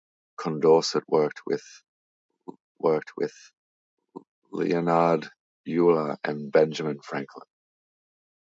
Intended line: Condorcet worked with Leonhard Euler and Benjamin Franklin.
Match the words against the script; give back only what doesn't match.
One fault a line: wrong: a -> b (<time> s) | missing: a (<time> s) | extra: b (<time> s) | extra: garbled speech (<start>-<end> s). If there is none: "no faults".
extra: worked with (2.8 s)